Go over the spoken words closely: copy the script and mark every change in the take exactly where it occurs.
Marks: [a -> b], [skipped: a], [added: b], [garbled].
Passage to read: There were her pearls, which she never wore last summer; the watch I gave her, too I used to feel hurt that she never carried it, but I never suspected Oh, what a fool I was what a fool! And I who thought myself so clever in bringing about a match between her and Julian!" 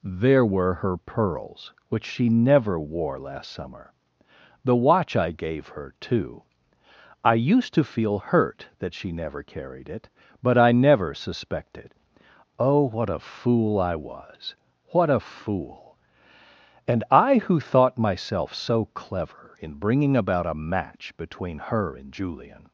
There were her pearls, which she never wore last summer; the watch I gave her, too I used to feel hurt that she never carried it, but I never suspected Oh, what a fool I was what a fool! And I who thought myself so clever in bringing about a match between her and Julian!"